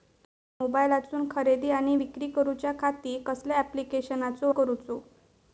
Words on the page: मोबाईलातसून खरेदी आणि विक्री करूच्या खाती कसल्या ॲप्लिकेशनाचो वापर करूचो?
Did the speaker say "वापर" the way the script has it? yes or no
no